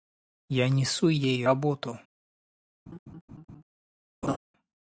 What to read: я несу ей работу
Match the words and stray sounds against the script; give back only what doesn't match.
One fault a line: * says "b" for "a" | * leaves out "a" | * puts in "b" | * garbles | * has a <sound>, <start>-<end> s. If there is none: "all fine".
* has a laugh, 2.9-3.6 s
* has a laugh, 4.2-4.4 s